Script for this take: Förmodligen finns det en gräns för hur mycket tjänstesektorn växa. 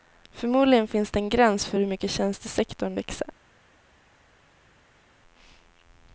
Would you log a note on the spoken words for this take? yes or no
no